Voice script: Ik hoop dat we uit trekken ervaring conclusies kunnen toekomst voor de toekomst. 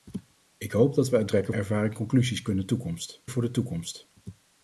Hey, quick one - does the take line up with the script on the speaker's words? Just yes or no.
yes